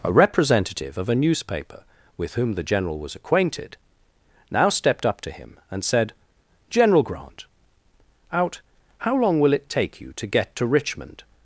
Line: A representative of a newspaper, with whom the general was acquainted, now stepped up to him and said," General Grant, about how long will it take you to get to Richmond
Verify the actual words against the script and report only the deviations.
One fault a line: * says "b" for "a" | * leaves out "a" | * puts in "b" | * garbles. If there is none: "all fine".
* says "out" for "about"